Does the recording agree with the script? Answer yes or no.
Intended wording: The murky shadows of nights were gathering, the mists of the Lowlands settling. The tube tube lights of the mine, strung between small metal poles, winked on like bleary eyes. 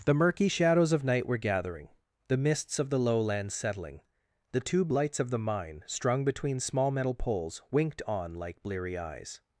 no